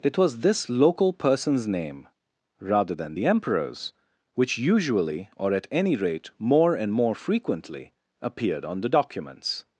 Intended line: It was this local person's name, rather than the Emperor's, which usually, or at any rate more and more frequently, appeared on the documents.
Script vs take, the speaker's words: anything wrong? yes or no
no